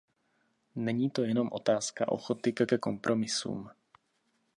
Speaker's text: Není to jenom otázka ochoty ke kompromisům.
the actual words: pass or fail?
fail